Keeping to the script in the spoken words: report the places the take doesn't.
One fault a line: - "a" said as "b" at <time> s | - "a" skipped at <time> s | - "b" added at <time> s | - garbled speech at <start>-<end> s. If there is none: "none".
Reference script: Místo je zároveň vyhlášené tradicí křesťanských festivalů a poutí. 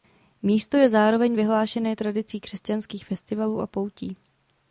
none